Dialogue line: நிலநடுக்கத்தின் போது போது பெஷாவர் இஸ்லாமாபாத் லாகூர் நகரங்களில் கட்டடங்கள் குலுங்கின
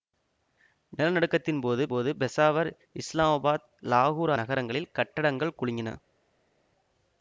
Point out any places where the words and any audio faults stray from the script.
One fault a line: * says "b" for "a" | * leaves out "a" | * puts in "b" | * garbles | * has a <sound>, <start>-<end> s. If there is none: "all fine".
all fine